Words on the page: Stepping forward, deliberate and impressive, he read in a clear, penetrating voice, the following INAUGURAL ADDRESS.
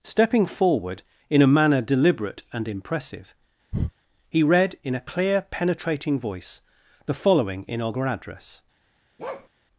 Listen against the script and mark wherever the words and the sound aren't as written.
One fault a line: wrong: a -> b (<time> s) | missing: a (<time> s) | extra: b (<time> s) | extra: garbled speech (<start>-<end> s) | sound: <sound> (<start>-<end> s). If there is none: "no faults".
extra: in a manner (1.3 s)
sound: breath (3.7-3.9 s)
sound: bark (9.2-9.5 s)